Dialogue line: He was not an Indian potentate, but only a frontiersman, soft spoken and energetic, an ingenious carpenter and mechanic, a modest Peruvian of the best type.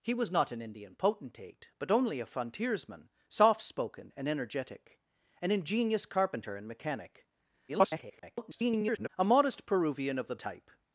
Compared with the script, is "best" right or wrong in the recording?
wrong